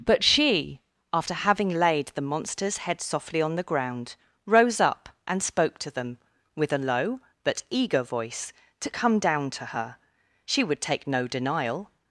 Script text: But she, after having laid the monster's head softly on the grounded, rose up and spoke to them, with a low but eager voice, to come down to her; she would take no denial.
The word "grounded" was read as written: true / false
false